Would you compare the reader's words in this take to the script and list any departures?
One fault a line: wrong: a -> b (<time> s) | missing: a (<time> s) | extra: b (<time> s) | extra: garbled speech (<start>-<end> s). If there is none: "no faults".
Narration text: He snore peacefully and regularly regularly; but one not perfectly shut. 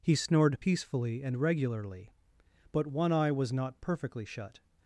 wrong: snore -> snored (0.1 s)
missing: regularly (2.1 s)
extra: eye was (3.1 s)